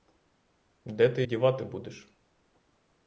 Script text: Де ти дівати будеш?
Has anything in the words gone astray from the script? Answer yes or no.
no